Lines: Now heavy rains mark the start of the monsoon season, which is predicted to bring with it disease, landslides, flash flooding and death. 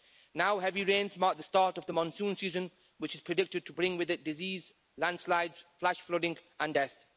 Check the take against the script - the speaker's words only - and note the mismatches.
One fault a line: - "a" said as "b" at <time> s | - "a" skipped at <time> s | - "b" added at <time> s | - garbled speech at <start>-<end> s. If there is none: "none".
none